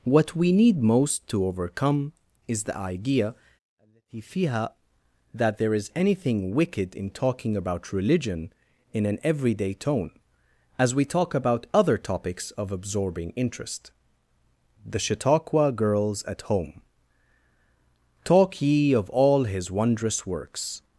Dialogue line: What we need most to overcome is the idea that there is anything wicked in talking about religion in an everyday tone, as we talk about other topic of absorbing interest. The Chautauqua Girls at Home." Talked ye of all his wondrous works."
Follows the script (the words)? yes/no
no